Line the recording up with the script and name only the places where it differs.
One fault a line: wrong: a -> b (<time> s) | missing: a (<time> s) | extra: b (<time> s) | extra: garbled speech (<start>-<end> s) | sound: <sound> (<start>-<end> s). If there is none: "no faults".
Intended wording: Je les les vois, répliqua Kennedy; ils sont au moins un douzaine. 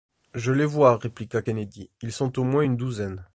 missing: les (0.7 s)
wrong: un -> une (2.6 s)